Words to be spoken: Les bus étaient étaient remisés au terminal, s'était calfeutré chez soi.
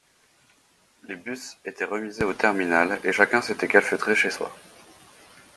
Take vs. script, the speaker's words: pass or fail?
fail